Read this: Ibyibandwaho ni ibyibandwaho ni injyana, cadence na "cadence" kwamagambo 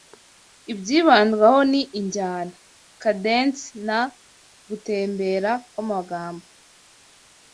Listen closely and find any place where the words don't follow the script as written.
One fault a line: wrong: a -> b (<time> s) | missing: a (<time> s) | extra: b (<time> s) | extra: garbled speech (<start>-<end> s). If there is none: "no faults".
missing: ibyibandwaho ni (1.8 s)
wrong: cadence -> gutembera (4.7 s)